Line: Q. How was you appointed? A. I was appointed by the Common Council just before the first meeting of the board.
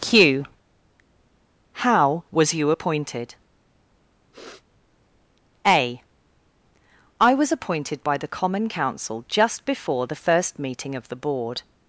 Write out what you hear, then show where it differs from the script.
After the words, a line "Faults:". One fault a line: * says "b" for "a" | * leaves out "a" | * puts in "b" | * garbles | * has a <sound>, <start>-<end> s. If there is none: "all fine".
Q. How was you appointed? A. I was appointed by the Common Council just before the first meeting of the board.
Faults:
* has a sniff, 4.3-4.6 s